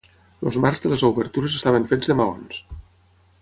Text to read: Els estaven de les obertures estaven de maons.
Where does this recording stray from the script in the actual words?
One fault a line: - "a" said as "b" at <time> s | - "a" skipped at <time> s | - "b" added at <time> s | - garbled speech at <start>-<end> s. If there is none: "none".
- "estaven" said as "marcs" at 0.6 s
- "fets" added at 1.9 s